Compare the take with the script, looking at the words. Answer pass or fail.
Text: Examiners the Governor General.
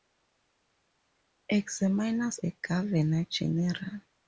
pass